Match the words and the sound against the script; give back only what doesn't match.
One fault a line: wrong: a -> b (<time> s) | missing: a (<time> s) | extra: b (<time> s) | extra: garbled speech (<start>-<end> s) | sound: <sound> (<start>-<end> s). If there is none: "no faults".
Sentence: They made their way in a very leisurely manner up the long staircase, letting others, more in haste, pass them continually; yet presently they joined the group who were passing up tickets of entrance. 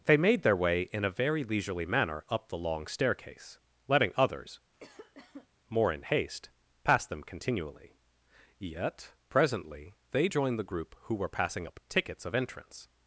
sound: cough (4.7-5.5 s)